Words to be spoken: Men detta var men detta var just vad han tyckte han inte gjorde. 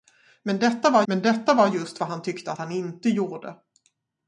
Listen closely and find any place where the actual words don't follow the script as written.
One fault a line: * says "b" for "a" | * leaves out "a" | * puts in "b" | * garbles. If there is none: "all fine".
all fine